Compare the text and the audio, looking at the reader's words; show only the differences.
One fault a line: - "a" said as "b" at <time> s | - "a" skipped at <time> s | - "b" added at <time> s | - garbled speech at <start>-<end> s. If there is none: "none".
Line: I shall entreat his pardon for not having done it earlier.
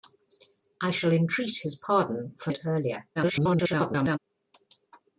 - "not having done" skipped at 2.5 s
- garbled speech at 3.2-4.2 s